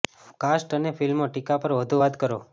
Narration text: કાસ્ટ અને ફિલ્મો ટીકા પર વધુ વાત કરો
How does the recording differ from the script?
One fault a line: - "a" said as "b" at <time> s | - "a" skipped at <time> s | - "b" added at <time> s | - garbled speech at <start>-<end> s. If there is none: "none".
none